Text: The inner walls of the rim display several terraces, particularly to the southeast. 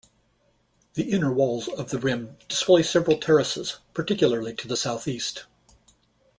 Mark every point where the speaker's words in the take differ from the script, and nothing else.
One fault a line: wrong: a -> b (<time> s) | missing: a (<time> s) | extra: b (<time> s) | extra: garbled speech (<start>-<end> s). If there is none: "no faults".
no faults